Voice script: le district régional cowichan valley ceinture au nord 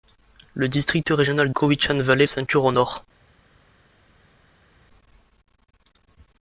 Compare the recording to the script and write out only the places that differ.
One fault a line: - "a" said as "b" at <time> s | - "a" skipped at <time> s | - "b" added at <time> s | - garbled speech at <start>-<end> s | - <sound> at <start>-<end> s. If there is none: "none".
none